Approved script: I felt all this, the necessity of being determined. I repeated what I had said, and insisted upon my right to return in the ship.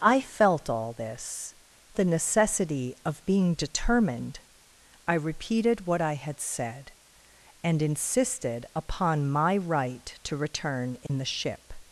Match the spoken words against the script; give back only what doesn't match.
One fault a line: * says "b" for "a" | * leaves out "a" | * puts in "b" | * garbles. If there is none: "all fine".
all fine